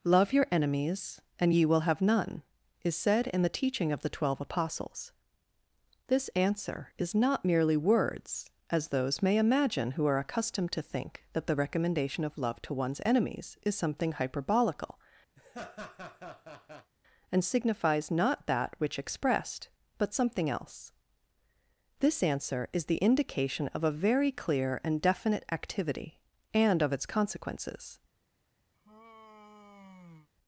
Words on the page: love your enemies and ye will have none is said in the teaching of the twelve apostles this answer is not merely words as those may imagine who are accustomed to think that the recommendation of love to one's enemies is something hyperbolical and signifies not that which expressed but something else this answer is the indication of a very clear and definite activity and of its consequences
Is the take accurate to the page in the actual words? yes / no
yes